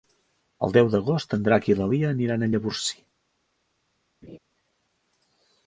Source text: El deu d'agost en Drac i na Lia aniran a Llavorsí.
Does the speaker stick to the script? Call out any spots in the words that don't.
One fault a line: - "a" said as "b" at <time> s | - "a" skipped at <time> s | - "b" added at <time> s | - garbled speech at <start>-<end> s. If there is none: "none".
none